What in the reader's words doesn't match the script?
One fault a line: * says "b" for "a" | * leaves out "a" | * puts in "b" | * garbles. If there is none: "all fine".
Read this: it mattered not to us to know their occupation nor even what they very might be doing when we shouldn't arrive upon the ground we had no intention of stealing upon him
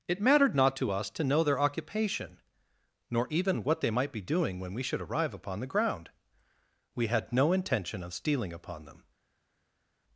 * leaves out "very"
* says "should" for "shouldn't"
* says "them" for "him"